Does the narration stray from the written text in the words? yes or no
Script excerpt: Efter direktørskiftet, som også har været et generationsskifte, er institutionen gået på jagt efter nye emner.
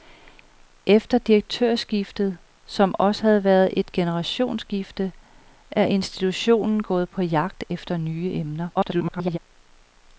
yes